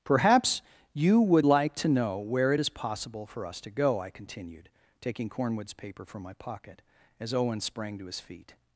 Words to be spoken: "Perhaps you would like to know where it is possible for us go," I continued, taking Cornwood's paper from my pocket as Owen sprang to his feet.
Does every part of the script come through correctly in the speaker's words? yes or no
no